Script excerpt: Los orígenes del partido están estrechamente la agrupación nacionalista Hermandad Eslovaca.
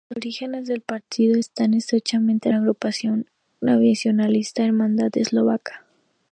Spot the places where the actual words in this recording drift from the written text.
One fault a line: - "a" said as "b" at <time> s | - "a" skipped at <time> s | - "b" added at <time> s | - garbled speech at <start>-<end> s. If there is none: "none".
none